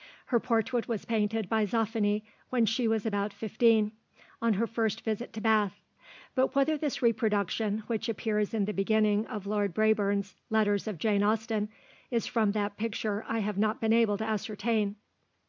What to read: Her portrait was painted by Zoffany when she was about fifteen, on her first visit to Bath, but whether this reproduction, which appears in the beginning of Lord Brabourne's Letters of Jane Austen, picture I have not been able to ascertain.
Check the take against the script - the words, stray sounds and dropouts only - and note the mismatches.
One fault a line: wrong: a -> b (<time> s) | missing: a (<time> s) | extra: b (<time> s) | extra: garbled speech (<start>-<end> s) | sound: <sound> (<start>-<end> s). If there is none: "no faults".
extra: is from that (12.1 s)